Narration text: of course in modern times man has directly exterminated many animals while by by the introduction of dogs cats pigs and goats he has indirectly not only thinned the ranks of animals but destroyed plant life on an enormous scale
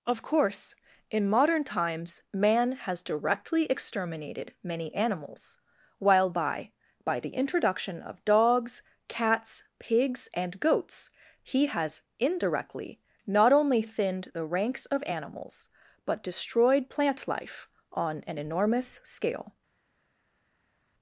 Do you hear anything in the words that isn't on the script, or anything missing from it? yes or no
no